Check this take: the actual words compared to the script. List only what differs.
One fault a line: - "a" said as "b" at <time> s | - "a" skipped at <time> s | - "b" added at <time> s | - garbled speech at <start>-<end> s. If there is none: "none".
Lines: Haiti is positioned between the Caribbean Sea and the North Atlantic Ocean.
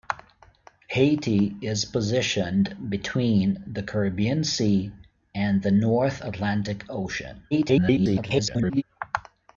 - garbled speech at 7.5-8.8 s